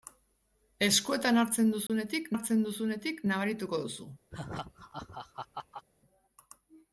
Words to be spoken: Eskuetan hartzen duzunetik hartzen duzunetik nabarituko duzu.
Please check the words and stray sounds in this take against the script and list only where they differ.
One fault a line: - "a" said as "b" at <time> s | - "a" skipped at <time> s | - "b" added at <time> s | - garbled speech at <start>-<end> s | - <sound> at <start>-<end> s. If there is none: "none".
- dropout at 1.9-1.9 s
- laugh at 4.3-5.9 s